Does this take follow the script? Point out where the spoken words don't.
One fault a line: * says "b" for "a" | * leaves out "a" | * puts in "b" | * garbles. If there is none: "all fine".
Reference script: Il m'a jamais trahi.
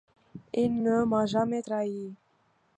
* puts in "ne"